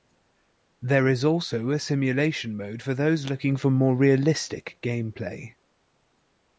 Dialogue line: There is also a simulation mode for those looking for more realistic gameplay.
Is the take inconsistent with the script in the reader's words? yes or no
no